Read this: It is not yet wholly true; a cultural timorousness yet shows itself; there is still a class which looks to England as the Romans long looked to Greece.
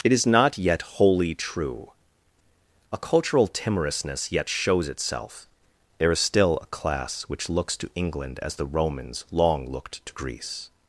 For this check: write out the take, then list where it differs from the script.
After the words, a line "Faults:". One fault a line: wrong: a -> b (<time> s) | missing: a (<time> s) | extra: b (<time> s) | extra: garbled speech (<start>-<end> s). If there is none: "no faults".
It is not yet wholly true; a cultural timorousness yet shows itself; there is still a class which looks to England as the Romans long looked to Greece.
Faults:
no faults